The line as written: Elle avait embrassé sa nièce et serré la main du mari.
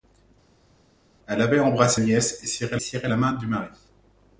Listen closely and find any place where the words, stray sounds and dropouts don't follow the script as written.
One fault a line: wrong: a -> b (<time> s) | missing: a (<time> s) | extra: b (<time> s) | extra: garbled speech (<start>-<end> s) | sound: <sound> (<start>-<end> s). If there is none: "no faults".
missing: sa (2.0 s)
extra: serré (2.8 s)